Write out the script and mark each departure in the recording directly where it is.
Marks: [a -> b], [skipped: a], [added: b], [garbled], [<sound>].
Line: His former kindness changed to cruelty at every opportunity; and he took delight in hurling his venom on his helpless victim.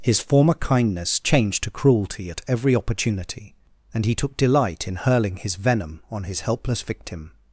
His former kindness changed to cruelty at every opportunity; and he took delight in hurling his venom on his helpless victim.